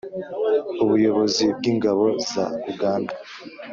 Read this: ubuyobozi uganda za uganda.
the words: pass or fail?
fail